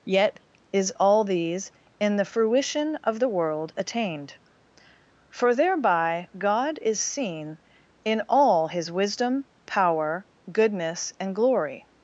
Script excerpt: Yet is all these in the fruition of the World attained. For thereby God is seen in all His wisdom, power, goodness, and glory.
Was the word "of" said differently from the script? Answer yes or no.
no